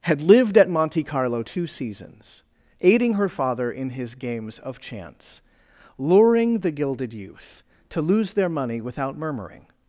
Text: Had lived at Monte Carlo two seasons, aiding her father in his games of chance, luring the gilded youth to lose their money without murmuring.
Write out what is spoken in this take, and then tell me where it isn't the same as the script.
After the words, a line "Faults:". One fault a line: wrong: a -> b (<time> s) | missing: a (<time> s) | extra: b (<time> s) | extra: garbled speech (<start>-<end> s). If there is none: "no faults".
Had lived at Monte Carlo two seasons, aiding her father in his games of chance, luring the gilded youth to lose their money without murmuring.
Faults:
no faults